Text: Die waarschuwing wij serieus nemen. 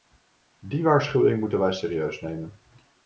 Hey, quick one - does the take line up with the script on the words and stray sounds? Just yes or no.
no